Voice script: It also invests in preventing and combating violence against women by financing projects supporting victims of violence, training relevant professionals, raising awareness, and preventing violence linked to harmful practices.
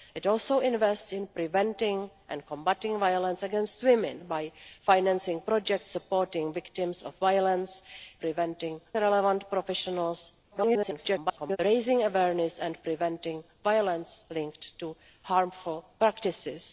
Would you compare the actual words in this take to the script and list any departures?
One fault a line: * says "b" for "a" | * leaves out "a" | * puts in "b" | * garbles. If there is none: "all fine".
* says "preventing" for "training"
* garbles